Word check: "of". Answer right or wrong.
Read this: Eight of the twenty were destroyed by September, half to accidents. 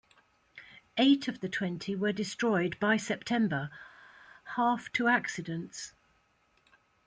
right